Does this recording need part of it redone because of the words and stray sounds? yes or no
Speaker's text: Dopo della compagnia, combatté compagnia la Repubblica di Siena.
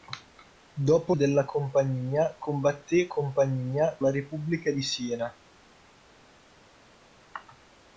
no